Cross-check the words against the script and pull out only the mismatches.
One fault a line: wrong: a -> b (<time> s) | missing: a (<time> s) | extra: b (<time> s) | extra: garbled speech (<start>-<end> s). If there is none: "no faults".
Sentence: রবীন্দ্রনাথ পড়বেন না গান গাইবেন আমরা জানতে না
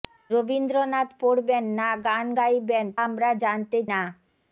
no faults